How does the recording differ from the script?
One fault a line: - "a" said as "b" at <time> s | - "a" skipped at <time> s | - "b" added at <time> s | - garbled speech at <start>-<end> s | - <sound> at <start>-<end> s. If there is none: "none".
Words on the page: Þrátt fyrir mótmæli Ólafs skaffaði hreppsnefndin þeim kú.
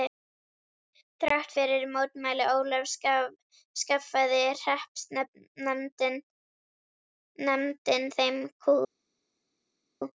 none